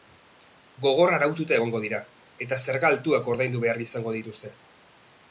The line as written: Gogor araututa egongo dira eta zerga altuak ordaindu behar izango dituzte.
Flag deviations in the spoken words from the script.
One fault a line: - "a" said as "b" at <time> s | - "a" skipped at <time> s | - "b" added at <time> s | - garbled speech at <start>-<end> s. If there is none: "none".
none